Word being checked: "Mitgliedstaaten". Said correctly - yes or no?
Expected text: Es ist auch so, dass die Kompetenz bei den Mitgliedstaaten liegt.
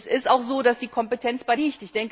no